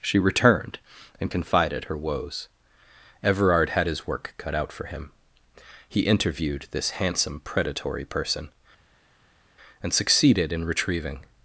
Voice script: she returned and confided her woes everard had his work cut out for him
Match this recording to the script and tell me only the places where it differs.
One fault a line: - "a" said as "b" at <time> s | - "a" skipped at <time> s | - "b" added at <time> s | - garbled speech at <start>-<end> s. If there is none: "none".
- "he interviewed this handsome predatory person and succeeded in retrieving" added at 5.9 s